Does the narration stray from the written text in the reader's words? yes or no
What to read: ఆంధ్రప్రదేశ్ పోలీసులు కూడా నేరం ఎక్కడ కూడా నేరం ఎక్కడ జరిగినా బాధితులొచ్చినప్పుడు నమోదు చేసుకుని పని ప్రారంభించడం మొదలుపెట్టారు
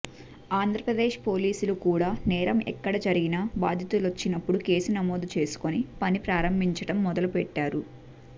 yes